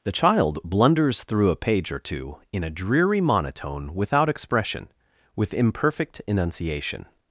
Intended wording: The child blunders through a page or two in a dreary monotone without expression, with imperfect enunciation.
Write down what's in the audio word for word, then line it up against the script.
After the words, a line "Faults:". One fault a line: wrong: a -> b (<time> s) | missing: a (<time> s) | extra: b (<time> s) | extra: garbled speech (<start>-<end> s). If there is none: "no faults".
The child blunders through a page or two in a dreary monotone without expression, with imperfect enunciation.
Faults:
no faults